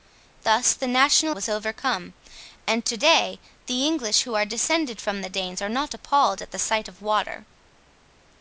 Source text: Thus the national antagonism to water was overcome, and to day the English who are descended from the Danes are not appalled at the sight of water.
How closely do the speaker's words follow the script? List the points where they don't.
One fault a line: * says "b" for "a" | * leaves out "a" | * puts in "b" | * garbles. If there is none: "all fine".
* leaves out "antagonism to water"